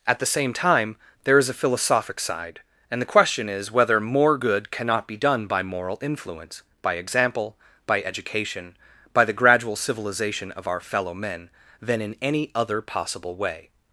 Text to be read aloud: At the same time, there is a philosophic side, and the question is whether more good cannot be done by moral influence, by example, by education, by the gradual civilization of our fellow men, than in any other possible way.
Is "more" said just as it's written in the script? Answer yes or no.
yes